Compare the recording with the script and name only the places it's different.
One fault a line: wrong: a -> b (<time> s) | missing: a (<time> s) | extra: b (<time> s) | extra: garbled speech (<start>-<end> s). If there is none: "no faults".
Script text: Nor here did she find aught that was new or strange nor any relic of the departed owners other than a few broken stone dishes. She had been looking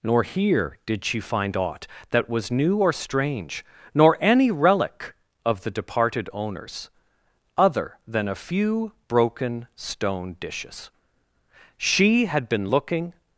no faults